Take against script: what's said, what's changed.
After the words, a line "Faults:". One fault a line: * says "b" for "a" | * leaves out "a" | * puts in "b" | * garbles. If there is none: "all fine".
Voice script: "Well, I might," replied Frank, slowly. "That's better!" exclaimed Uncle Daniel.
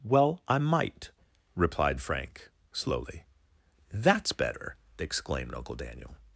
"Well, I might," replied Frank, slowly. "That's better!" exclaimed Uncle Daniel.
Faults:
all fine